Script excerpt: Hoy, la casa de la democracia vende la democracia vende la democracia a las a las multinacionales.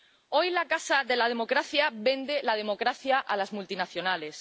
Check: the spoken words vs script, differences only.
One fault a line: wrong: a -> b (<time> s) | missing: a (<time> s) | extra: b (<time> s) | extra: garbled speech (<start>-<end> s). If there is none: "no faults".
missing: vende la democracia a las (3.2 s)